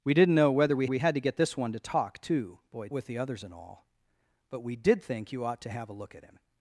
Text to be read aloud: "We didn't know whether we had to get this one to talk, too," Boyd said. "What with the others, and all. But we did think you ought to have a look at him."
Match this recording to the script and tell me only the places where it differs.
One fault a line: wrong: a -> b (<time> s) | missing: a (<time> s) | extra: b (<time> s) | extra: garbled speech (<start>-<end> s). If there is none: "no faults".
extra: we (0.9 s)
missing: said What (2.9 s)